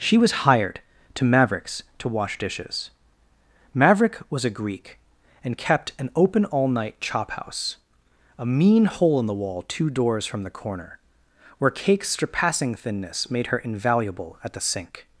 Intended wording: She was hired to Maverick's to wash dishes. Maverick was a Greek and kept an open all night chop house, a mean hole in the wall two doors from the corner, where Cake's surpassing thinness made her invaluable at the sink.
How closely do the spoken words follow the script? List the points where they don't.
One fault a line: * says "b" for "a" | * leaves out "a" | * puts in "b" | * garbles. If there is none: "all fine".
all fine